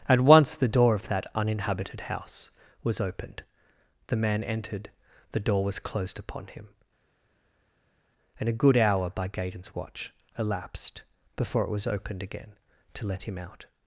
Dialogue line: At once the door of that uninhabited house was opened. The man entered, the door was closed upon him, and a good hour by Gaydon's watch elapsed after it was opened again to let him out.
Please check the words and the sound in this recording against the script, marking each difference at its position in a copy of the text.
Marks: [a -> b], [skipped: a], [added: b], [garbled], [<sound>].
At once the door of that uninhabited house was opened. The man entered, the door was closed upon him, and a good hour by Gaydon's watch elapsed [after -> before] it was opened again to let him out.